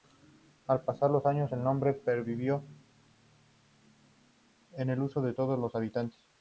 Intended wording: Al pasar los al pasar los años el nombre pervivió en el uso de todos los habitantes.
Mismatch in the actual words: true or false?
true